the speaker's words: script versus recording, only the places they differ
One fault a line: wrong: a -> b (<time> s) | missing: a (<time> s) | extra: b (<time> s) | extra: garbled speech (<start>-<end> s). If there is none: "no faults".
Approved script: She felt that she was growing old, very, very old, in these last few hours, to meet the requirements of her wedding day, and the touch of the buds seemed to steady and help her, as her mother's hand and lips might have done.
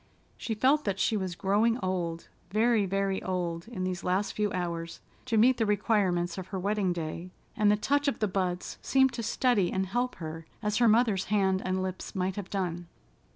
no faults